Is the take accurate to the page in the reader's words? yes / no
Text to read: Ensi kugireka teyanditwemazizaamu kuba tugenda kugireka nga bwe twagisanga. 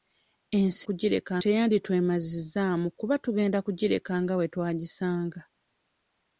yes